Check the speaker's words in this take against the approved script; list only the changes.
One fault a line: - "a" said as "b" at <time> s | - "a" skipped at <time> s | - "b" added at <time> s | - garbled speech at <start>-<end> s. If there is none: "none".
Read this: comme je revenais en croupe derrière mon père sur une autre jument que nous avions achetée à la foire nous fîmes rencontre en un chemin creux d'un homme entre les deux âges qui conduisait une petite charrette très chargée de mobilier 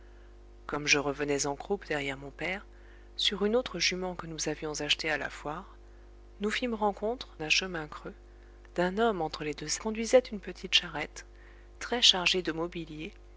- "en" skipped at 7.4 s
- "âges qui" skipped at 9.8 s